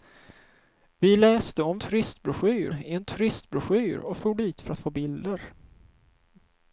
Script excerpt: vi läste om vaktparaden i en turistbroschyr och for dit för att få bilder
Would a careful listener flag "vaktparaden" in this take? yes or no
yes